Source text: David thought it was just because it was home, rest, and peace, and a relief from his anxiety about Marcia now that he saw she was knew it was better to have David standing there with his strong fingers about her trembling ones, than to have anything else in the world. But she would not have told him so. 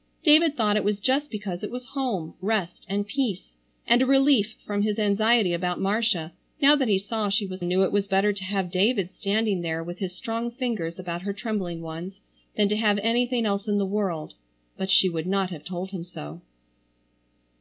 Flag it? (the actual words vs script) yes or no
no